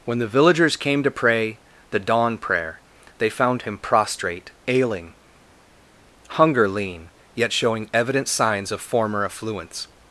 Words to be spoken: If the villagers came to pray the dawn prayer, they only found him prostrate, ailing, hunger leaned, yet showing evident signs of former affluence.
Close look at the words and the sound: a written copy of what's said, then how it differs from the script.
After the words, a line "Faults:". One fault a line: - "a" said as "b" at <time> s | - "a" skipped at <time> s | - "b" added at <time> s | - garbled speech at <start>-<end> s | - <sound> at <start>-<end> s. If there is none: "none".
When the villagers came to pray the dawn prayer, they found him prostrate, ailing, hunger lean, yet showing evident signs of former affluence.
Faults:
- "If" said as "When" at 0.0 s
- "only" skipped at 3.3 s
- "leaned" said as "lean" at 6.7 s